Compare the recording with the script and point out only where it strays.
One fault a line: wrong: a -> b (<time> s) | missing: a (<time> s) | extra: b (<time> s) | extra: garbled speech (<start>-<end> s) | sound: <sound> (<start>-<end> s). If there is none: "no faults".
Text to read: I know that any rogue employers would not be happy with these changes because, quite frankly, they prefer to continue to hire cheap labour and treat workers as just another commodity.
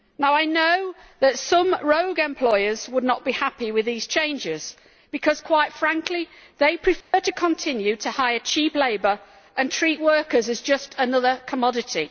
wrong: any -> some (1.4 s)
sound: dropout (7.0-7.1 s)